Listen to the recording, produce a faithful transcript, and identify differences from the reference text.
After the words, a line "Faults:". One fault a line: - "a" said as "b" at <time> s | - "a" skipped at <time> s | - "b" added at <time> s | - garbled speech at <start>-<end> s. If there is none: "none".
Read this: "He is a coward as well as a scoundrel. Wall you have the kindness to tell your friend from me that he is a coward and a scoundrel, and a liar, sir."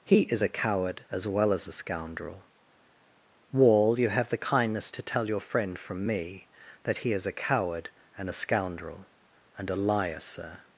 "He is a coward as well as a scoundrel. Wall you have the kindness to tell your friend from me that he is a coward and a scoundrel, and a liar, sir."
Faults:
none